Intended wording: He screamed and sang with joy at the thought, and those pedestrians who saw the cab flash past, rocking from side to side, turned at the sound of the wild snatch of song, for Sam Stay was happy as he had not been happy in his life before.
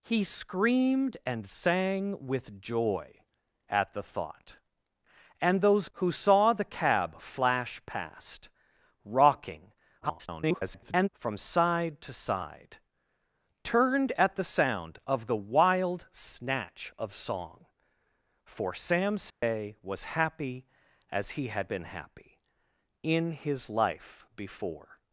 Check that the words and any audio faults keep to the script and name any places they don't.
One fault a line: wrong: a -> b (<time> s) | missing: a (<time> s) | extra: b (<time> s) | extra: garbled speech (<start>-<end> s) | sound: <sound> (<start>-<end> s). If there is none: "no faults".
missing: pedestrians (5.9 s)
extra: garbled speech (10.0-11.1 s)
sound: dropout (19.3-19.4 s)
missing: not (21.7 s)